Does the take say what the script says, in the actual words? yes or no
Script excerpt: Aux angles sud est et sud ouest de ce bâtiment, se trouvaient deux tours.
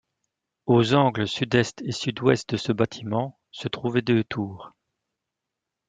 yes